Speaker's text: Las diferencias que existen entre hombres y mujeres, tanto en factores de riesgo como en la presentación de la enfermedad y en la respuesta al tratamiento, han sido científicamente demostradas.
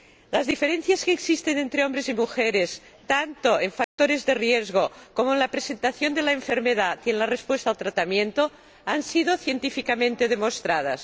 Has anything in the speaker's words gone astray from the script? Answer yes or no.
no